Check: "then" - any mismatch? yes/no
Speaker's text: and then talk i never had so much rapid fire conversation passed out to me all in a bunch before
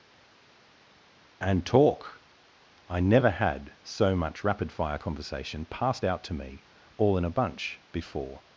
yes